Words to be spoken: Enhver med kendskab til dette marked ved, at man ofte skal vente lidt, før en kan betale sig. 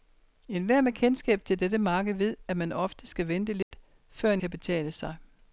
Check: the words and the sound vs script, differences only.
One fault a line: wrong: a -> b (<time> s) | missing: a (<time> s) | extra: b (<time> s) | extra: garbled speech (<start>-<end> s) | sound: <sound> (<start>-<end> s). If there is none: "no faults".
sound: dropout (3.6-3.7 s)